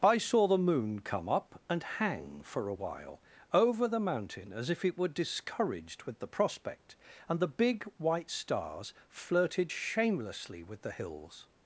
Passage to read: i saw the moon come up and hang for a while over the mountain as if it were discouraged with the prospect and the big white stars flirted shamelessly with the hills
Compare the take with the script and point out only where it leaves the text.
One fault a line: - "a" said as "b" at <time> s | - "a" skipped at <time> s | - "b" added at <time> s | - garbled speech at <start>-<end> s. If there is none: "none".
none